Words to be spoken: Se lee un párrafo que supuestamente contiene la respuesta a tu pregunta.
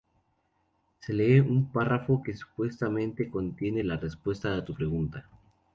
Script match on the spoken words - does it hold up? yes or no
yes